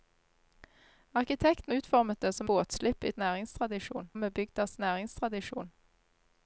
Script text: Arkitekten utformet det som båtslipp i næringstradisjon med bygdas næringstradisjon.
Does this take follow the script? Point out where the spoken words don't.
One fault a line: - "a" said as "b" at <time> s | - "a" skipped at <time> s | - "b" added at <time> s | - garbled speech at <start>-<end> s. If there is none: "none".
none